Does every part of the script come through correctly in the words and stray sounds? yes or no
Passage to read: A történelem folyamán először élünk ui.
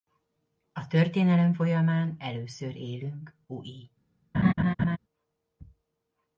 no